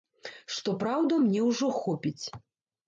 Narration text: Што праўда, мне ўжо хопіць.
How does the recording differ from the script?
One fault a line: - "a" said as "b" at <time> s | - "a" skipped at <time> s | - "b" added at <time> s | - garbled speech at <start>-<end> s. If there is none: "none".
none